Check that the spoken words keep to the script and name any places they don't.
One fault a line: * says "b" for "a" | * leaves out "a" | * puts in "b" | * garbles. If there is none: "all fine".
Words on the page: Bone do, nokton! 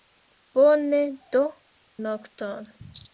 all fine